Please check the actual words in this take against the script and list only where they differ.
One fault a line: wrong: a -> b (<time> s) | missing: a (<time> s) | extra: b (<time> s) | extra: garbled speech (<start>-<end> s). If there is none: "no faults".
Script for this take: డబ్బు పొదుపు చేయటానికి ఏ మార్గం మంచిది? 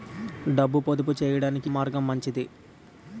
missing: ఏ (1.7 s)